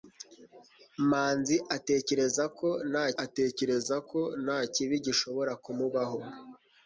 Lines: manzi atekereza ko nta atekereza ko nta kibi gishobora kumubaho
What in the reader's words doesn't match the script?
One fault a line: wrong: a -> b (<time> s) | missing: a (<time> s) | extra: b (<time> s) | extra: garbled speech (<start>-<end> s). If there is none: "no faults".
no faults